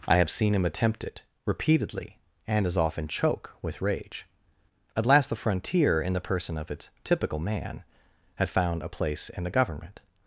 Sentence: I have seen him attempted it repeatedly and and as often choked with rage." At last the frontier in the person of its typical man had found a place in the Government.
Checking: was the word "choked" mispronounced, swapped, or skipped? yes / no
yes